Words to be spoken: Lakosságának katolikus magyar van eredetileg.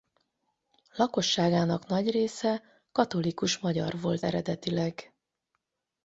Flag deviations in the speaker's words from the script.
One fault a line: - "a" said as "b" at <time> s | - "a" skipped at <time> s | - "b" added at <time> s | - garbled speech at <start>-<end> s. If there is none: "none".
- "nagy része" added at 1.9 s
- "van" said as "volt" at 4.0 s